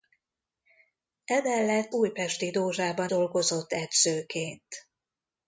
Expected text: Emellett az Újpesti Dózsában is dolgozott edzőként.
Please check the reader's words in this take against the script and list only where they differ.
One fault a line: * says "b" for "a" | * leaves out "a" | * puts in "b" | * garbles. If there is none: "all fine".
* leaves out "az"
* leaves out "is"